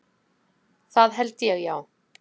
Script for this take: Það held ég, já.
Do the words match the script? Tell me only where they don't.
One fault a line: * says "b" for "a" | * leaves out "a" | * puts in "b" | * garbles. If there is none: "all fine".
all fine